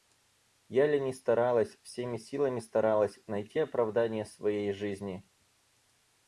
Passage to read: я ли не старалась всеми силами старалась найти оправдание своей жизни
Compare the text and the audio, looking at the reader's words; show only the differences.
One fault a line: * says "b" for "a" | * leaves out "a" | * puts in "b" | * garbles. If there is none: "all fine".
all fine